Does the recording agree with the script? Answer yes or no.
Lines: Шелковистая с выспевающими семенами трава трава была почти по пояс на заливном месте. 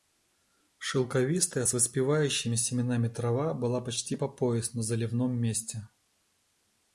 no